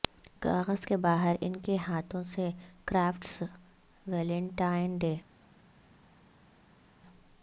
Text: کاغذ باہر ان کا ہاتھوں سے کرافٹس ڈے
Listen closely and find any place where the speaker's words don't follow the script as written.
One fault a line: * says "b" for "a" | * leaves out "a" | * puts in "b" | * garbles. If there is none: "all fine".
* puts in "کے"
* says "کے" for "کا"
* puts in "ویلنٹائن"